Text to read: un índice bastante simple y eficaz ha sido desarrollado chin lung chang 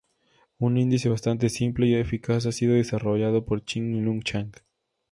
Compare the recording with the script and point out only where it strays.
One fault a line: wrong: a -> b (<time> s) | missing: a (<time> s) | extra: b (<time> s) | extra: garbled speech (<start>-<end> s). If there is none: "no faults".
extra: por (3.4 s)